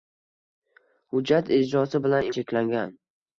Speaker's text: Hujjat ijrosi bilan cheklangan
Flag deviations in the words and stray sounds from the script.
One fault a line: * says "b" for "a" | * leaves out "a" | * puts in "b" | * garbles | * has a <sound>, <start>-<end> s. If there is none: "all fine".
all fine